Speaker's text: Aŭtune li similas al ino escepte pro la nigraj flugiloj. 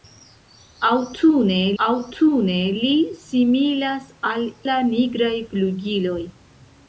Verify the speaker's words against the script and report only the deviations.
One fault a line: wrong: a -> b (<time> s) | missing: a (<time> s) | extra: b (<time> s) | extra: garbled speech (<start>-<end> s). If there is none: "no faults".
extra: aŭtune (1.8 s)
missing: ino escepte pro (4.5 s)